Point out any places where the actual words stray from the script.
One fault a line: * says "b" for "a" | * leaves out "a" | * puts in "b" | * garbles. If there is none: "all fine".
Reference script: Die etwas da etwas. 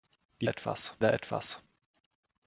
all fine